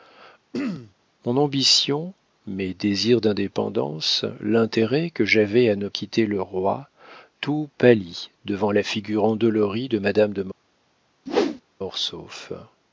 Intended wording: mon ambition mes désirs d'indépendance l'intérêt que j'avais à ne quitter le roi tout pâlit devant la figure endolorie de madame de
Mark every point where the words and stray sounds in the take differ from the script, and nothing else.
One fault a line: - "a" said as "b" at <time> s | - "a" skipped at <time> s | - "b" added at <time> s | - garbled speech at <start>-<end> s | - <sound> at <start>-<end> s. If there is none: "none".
- throat clearing at 0.5-0.9 s
- whoosh at 11.3-11.6 s